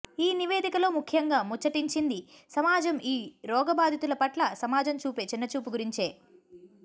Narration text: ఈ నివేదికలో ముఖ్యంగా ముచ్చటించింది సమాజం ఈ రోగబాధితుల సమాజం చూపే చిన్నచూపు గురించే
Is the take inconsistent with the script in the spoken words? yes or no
yes